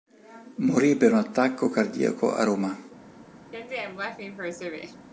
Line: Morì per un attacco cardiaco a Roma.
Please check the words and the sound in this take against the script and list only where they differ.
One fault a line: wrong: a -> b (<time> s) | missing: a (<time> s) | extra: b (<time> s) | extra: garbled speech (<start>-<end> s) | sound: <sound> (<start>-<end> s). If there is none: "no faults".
sound: laugh (3.5-5.1 s)